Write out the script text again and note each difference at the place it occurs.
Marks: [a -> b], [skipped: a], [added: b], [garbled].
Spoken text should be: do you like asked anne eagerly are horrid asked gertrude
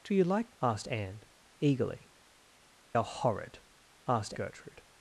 do you like asked anne eagerly are horrid asked gertrude